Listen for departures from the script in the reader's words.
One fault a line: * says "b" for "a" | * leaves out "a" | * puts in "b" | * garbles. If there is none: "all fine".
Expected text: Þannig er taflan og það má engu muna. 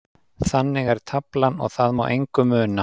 all fine